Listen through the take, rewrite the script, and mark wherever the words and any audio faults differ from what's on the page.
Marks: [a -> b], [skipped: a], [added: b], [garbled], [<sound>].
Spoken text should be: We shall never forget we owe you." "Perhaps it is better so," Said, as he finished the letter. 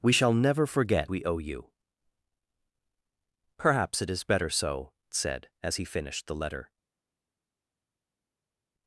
We shall never forget we owe you." "Perhaps it is better so," Said, as he finished the letter.